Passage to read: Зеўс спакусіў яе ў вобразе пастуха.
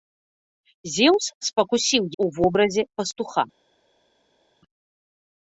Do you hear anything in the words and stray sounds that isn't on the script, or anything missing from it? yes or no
yes